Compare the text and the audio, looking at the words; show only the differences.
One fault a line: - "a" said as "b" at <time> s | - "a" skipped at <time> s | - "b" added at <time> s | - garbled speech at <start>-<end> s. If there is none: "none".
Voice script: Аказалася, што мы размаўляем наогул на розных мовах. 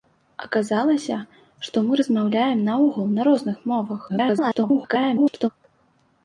- garbled speech at 4.1-5.5 s